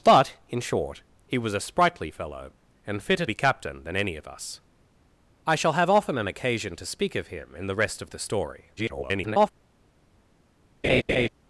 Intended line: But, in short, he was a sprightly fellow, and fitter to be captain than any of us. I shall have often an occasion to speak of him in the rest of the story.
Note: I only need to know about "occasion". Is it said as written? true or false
true